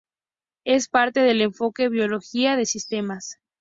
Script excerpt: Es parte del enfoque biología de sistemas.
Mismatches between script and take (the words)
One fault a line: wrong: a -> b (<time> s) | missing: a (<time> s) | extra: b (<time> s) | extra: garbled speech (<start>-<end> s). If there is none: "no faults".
no faults